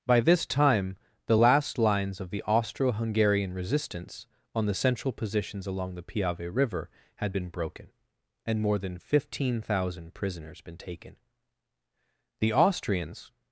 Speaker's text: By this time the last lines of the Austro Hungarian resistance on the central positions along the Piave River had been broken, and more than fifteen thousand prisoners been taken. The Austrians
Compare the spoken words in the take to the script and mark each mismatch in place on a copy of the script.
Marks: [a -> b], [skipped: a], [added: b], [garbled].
By this time the last lines of the Austro Hungarian resistance on the central positions along the Piave River had been broken, and more than fifteen thousand prisoners been taken. The Austrians